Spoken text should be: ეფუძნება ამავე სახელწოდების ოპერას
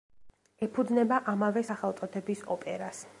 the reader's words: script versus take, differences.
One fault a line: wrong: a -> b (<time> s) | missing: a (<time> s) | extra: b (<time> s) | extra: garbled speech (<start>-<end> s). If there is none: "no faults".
no faults